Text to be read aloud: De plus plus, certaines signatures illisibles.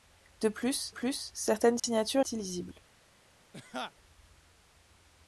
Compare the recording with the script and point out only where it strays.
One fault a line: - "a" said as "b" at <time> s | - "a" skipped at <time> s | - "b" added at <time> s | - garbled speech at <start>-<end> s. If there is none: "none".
none